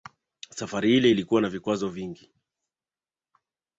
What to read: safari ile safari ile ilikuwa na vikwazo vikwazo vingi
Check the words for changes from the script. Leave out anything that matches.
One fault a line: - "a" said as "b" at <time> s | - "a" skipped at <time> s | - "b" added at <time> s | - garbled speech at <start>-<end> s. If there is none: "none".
- "safari ile" skipped at 1.1 s
- "vikwazo" skipped at 1.9 s